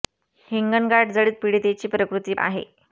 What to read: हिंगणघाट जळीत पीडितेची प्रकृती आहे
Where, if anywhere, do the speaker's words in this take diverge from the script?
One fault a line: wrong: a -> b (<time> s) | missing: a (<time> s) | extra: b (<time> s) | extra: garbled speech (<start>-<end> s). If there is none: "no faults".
no faults